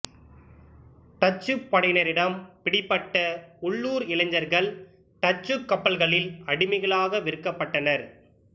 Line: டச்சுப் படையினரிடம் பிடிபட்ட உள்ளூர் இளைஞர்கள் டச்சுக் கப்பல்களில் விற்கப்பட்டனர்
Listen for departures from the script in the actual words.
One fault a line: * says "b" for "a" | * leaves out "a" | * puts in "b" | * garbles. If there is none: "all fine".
* puts in "அடிமைகளாக"